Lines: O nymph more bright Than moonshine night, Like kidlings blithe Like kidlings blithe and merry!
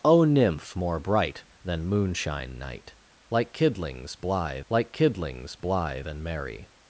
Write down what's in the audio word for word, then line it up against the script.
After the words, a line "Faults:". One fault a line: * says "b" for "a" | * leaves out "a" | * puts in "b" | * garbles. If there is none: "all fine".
O nymph more bright Than moonshine night, Like kidlings blithe Like kidlings blithe and merry!
Faults:
all fine